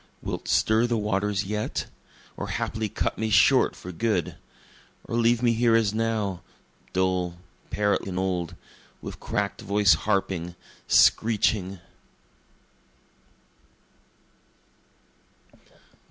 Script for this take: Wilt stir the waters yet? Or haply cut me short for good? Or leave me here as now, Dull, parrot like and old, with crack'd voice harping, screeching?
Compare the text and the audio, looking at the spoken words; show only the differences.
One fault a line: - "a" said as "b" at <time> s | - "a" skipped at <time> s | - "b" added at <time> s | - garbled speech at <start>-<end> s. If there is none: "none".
- "like" skipped at 8.1 s